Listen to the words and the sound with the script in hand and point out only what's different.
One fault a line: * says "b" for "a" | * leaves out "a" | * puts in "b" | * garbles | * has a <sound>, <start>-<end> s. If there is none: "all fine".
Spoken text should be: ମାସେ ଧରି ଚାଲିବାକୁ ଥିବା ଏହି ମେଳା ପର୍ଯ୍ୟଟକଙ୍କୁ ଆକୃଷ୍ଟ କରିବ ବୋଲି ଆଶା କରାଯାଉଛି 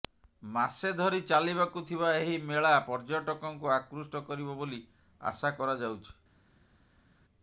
all fine